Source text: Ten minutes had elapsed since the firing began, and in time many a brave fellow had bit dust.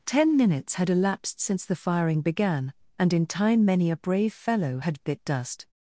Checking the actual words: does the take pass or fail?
pass